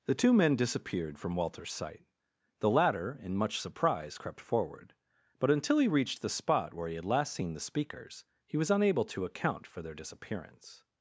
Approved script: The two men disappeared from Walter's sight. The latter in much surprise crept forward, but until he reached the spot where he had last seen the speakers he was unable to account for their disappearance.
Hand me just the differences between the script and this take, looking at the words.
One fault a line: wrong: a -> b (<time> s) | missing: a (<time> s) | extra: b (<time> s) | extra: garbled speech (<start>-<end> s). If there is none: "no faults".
no faults